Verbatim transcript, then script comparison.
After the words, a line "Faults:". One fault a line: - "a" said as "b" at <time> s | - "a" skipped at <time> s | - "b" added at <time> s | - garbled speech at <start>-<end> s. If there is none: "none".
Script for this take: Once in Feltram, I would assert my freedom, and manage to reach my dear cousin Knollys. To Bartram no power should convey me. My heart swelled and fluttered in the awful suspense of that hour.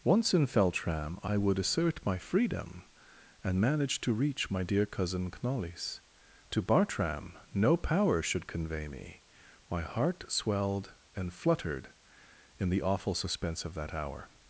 Once in Feltram, I would assert my freedom, and manage to reach my dear cousin Knollys. To Bartram no power should convey me. My heart swelled and fluttered in the awful suspense of that hour.
Faults:
none